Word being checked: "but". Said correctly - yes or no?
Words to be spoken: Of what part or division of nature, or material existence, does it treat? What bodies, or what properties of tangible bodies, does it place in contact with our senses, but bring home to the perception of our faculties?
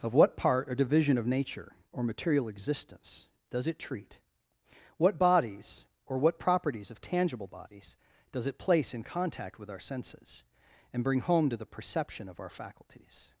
no